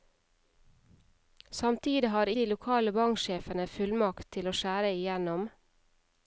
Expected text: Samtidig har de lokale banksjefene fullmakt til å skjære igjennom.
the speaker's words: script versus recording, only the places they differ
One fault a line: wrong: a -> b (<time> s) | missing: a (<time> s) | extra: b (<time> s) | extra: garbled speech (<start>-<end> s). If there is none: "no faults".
no faults